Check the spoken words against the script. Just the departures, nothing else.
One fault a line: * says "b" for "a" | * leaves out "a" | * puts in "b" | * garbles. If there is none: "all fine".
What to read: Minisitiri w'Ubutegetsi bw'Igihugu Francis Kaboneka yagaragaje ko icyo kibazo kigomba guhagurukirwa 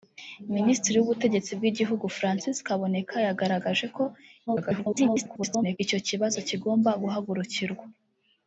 * garbles